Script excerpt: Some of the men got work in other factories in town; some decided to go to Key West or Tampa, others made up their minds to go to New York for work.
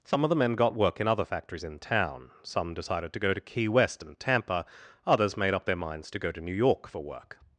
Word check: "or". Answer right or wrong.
wrong